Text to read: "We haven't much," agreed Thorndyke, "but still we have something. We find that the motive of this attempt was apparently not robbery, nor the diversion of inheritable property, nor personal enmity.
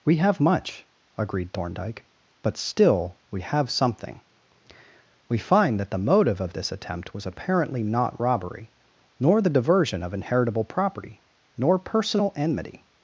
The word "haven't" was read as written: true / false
false